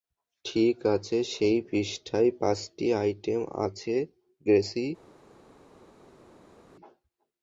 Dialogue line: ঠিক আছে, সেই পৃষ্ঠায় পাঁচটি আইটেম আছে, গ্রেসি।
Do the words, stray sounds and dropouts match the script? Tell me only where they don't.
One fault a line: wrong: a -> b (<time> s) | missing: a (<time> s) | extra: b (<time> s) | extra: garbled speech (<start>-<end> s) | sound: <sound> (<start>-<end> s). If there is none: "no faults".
no faults